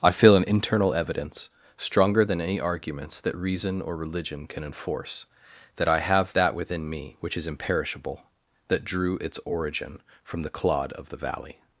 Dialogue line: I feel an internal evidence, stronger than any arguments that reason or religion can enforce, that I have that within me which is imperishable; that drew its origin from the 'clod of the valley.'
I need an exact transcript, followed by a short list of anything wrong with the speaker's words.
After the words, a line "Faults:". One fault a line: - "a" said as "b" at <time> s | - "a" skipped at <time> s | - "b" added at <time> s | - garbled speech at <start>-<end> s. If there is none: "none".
I feel an internal evidence, stronger than any arguments that reason or religion can enforce, that I have that within me which is imperishable; that drew its origin from the 'clod of the valley.'
Faults:
none